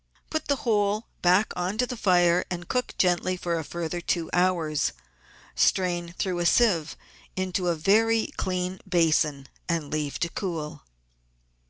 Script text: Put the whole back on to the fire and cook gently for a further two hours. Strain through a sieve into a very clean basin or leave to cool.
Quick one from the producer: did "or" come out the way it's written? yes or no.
no